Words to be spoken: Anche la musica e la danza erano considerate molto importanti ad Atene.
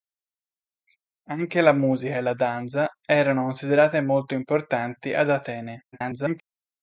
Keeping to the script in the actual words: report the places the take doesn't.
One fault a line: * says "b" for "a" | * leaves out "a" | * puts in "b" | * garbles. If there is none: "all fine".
* garbles